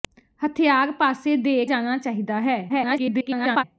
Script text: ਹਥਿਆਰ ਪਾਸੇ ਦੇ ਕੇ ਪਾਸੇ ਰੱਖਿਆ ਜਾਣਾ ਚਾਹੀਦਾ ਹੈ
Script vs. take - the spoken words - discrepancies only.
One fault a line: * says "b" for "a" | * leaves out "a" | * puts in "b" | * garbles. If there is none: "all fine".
* leaves out "ਕੇ ਪਾਸੇ ਰੱਖਿਆ"
* garbles